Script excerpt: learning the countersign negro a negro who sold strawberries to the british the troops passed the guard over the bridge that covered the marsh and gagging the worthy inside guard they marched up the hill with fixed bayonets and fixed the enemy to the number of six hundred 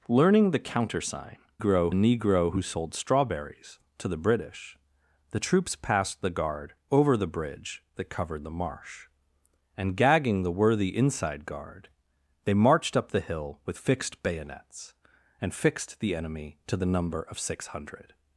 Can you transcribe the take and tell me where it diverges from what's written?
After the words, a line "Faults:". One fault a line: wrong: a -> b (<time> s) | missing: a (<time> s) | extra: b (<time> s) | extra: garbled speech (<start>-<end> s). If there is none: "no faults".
learning the countersign negro a negro who sold strawberries to the british the troops passed the guard over the bridge that covered the marsh and gagging the worthy inside guard they marched up the hill with fixed bayonets and fixed the enemy to the number of six hundred
Faults:
no faults